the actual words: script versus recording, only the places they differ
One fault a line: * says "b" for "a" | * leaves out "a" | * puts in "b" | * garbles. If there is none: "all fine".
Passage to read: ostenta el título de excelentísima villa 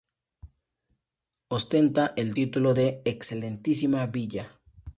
all fine